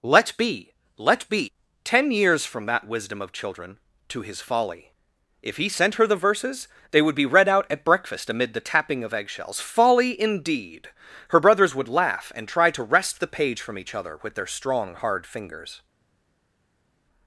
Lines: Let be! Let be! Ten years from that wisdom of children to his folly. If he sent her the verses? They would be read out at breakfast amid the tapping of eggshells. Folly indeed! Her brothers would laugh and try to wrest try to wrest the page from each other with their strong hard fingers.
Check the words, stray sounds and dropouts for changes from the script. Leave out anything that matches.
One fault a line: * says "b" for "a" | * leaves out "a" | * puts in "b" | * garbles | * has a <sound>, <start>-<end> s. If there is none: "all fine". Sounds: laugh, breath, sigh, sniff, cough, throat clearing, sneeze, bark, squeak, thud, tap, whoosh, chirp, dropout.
* leaves out "try to wrest"